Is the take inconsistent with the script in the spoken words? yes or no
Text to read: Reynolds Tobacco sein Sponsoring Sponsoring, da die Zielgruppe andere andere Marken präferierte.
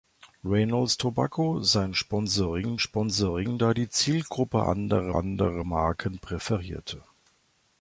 no